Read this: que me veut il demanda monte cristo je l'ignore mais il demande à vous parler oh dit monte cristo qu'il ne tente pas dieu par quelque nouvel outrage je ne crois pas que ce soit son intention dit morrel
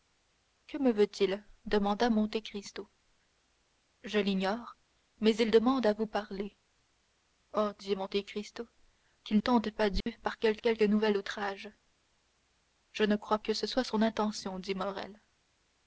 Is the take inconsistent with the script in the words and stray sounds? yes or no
yes